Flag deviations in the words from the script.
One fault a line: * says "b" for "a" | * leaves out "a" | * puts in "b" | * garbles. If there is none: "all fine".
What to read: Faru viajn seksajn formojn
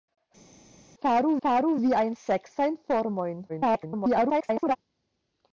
* puts in "faru"
* garbles